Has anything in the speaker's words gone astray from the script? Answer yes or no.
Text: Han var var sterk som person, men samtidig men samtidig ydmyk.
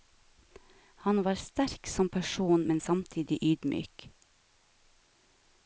yes